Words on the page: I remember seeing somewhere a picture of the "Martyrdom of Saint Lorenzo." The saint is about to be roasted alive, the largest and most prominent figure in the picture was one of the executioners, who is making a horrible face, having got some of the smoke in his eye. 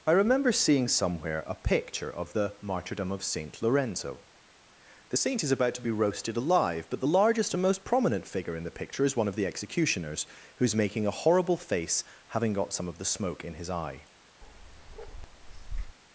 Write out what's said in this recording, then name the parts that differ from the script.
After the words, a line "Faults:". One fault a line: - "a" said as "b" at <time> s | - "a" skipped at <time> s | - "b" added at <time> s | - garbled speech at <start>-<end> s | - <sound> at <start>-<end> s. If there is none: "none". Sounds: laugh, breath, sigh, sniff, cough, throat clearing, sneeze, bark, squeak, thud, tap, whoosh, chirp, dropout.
I remember seeing somewhere a picture of the "Martyrdom of Saint Lorenzo." The saint is about to be roasted alive, but the largest and most prominent figure in the picture is one of the executioners, who is making a horrible face, having got some of the smoke in his eye.
Faults:
- "but" added at 6.9 s
- "was" said as "is" at 9.0 s
- bark at 14.4-16.0 s